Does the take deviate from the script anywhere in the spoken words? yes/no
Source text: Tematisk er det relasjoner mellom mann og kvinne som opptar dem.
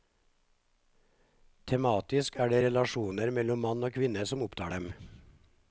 no